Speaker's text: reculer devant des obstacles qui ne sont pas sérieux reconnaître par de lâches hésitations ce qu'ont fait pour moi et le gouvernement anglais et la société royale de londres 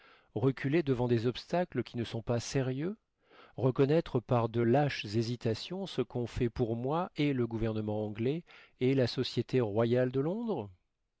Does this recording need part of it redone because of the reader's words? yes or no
no